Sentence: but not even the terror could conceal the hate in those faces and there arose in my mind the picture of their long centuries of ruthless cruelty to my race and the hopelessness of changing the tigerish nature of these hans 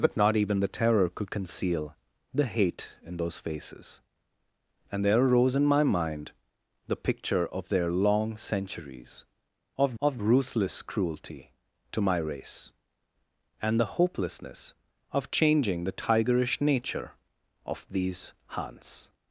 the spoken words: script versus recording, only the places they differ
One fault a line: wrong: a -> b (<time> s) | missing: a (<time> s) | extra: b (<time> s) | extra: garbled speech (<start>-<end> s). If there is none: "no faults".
extra: of (10.0 s)